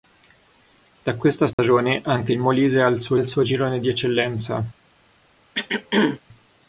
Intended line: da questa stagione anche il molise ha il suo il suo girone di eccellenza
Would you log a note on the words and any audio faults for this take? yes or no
yes